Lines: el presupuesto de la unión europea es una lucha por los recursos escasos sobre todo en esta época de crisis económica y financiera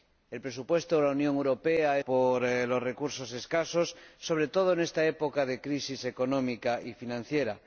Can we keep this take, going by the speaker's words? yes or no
no